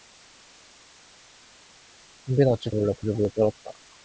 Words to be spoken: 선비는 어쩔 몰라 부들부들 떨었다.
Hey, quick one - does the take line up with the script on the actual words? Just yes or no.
yes